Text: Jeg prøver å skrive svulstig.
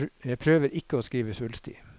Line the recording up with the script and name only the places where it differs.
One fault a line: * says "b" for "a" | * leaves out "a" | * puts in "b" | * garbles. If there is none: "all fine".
* puts in "ikke"